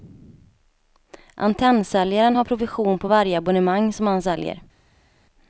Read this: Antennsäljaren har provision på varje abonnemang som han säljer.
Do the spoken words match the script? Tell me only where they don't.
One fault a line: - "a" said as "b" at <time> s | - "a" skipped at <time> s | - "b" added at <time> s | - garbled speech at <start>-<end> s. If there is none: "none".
none